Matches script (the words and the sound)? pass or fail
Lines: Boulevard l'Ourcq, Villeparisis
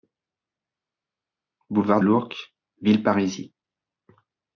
pass